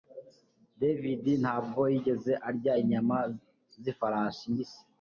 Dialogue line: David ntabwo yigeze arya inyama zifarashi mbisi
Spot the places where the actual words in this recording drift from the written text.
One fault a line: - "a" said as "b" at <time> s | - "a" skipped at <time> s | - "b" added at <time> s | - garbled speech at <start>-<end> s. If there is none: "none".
none